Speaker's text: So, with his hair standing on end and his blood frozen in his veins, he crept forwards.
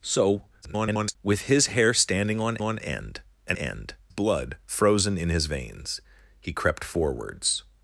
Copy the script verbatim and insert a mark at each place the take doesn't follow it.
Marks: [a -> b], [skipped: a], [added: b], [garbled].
So, [garbled] with his hair standing on [added: on] end and [his -> end] blood frozen in his veins, he crept forwards.